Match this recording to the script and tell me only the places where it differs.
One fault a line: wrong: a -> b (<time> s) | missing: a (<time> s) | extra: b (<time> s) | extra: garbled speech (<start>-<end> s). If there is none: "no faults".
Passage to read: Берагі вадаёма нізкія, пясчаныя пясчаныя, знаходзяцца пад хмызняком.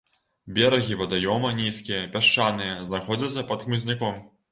missing: пясчаныя (2.8 s)